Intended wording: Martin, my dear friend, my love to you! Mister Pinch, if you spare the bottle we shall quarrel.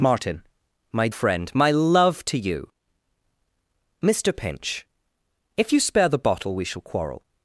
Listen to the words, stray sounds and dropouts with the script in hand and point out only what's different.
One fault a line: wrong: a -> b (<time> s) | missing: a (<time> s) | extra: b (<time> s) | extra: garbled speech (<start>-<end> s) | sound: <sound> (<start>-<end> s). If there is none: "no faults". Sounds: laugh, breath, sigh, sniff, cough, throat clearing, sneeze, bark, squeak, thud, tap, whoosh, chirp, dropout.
missing: dear (1.1 s)